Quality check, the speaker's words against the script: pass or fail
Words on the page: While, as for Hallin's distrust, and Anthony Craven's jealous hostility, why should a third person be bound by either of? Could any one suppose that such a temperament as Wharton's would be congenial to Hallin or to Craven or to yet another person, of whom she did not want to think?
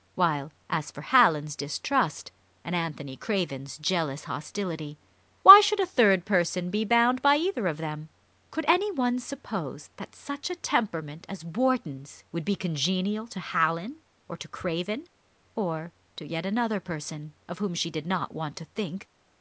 fail